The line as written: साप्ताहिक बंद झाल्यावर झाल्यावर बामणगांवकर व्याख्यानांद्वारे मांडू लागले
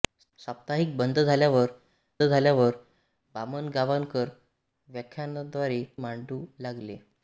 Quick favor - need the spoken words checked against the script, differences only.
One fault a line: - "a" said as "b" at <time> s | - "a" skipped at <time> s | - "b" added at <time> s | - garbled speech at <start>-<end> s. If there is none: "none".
none